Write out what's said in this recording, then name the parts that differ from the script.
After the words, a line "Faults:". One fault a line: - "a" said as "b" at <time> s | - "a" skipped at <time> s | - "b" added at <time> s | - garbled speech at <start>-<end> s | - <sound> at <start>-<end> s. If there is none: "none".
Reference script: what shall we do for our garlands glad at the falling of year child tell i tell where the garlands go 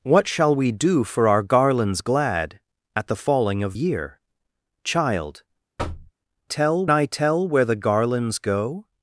what shall we do for our garlands glad at the falling of year child tell i tell where the garlands go
Faults:
- thud at 5.8-6.1 s